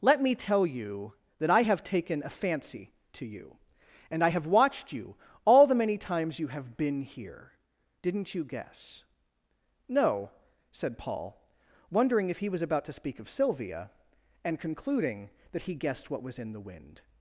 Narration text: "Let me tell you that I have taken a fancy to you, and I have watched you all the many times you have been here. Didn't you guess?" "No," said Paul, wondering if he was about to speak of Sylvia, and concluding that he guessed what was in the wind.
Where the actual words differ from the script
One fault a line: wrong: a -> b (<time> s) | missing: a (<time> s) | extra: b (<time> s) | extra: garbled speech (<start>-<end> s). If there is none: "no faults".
no faults